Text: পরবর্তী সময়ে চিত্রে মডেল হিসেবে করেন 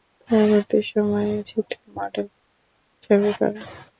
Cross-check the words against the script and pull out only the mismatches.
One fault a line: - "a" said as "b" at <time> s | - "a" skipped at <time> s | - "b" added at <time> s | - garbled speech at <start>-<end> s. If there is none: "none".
none